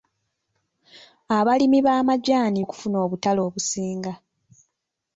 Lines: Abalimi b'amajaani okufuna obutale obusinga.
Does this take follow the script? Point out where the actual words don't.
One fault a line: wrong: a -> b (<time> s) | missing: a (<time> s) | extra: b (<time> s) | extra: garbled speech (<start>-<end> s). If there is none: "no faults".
no faults